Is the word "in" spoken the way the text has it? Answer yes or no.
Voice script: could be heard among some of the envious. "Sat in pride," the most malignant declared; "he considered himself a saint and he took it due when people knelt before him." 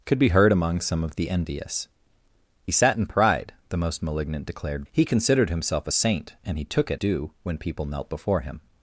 yes